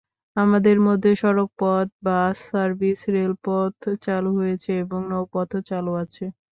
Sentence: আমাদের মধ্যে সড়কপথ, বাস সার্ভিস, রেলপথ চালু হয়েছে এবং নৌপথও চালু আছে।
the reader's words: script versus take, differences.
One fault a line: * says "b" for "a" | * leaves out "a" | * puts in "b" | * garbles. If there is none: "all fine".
all fine